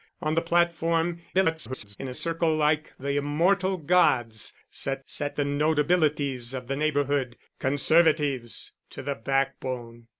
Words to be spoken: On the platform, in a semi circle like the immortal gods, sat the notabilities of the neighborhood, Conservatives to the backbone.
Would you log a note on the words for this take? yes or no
yes